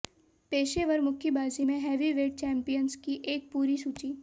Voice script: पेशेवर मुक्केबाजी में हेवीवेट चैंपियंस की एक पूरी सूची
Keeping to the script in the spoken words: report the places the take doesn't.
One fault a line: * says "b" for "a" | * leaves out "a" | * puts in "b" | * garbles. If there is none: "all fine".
all fine